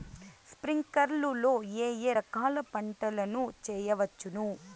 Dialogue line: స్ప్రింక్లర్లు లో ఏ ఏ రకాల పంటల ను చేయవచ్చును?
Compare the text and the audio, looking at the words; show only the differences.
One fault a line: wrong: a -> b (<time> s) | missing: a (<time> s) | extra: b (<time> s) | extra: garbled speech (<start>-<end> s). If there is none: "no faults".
no faults